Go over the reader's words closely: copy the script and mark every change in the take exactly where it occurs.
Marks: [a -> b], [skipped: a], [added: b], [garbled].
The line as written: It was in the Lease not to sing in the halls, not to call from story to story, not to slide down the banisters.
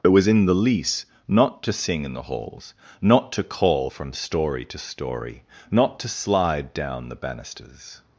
It was in the Lease not to sing in the halls, not to call from story to story, not to slide down the banisters.